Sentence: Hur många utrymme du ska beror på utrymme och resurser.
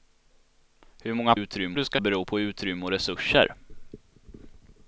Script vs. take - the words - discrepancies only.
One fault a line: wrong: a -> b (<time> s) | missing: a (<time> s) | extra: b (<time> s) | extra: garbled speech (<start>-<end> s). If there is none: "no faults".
no faults